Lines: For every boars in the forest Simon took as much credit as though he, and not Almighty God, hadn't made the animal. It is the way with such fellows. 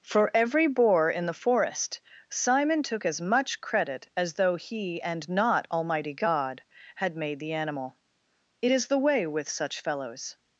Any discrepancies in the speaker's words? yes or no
yes